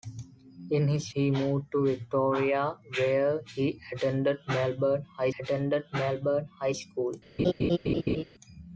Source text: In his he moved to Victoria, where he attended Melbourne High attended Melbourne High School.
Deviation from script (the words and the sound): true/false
true